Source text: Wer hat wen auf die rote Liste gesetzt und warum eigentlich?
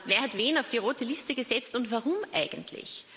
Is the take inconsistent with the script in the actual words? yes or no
no